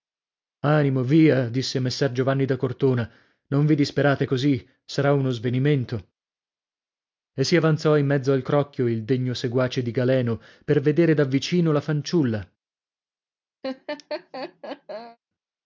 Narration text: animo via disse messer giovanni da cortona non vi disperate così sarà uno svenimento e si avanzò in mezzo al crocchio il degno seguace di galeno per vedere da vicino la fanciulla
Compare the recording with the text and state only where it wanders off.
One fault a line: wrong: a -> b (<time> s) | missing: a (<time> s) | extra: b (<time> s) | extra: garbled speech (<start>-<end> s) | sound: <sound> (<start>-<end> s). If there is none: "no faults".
sound: laugh (13.6-15.2 s)